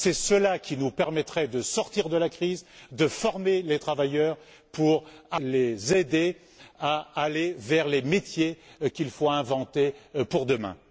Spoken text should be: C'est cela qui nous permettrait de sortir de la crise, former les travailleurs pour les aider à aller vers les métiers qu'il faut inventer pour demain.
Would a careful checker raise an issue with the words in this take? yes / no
yes